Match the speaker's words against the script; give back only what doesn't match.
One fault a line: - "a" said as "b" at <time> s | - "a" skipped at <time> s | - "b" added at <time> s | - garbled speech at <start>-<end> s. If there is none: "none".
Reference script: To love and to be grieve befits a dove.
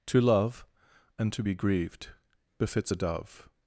- "grieve" said as "grieved" at 1.5 s